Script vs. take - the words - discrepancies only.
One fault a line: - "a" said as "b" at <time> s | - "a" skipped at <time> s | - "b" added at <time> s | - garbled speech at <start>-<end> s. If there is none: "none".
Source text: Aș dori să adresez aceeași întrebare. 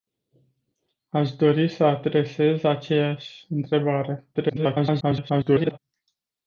- garbled speech at 4.3-5.8 s